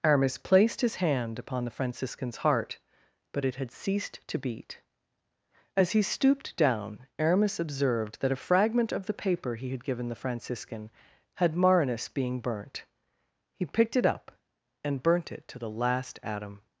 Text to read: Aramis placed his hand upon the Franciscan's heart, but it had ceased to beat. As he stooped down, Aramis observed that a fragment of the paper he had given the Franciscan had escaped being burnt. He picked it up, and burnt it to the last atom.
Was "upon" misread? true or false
false